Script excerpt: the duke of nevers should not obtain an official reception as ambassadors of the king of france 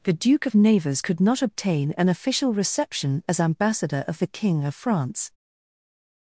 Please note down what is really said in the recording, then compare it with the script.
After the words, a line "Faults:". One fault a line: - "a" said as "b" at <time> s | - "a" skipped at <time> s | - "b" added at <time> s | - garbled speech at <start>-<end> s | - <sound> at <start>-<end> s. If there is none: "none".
the duke of nevers could not obtain an official reception as ambassador of the king of france
Faults:
- "should" said as "could" at 1.0 s
- "ambassadors" said as "ambassador" at 3.4 s